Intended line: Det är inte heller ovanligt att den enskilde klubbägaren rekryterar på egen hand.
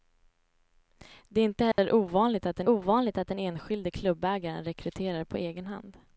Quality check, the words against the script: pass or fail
fail